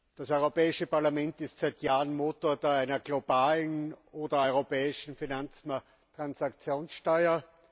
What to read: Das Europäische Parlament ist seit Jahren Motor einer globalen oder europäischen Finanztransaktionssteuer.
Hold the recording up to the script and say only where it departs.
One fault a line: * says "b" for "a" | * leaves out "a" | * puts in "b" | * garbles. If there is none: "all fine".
all fine